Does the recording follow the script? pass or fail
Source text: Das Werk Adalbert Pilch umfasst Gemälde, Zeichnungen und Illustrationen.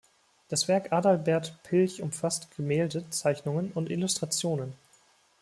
pass